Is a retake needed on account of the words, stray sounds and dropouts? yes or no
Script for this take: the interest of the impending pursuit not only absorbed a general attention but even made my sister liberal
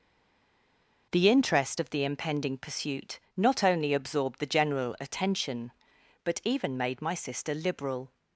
yes